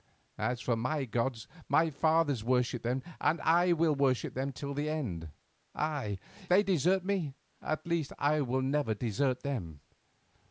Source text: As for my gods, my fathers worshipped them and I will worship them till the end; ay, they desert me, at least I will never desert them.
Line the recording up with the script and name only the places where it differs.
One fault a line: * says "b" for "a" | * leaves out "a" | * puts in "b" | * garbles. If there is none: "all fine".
all fine